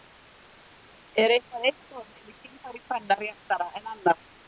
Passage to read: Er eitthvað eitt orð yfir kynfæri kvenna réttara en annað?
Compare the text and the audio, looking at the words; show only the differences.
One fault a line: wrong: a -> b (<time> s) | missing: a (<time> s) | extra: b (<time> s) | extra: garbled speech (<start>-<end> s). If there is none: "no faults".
no faults